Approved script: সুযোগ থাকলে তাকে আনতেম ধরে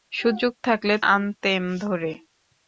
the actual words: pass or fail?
fail